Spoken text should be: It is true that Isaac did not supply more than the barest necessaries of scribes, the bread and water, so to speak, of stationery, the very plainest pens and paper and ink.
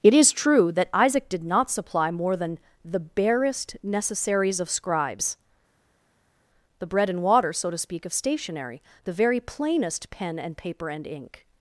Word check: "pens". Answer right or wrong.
wrong